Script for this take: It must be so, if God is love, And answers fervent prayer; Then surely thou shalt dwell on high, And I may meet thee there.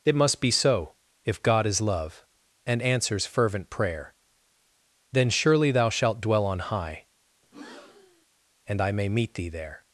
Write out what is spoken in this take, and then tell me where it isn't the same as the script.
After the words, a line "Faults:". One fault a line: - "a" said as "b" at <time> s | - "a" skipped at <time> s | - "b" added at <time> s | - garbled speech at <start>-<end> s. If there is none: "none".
It must be so, if God is love, And answers fervent prayer; Then surely thou shalt dwell on high, And I may meet thee there.
Faults:
none